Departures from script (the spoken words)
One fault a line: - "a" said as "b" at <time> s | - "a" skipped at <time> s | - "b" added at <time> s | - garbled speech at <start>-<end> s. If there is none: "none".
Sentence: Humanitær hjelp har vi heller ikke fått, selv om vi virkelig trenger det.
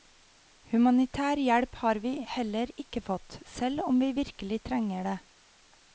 none